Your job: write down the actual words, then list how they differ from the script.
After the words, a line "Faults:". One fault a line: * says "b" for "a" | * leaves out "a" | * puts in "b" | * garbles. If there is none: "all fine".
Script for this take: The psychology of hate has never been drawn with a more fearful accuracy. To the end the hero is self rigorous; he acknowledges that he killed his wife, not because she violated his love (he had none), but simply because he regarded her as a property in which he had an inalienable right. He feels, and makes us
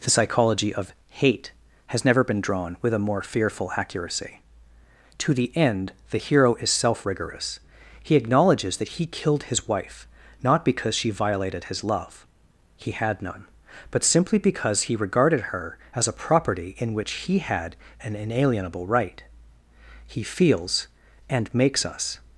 The psychology of hate has never been drawn with a more fearful accuracy. To the end the hero is self rigorous; he acknowledges that he killed his wife, not because she violated his love (he had none), but simply because he regarded her as a property in which he had an inalienable right. He feels, and makes us
Faults:
all fine